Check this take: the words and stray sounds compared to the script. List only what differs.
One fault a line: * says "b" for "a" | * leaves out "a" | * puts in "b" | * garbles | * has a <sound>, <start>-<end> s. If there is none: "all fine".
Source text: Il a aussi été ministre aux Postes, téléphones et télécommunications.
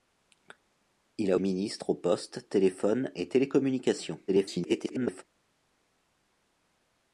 * leaves out "aussi été"
* garbles